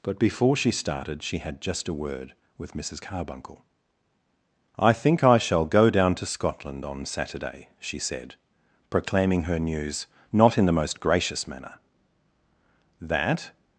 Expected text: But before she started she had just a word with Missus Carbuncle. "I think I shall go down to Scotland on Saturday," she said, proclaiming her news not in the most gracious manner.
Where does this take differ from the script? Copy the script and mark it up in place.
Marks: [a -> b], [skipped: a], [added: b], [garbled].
But before she started she had just a word with Missus Carbuncle. "I think I shall go down to Scotland on Saturday," she said, proclaiming her news not in the most gracious manner. [added: That]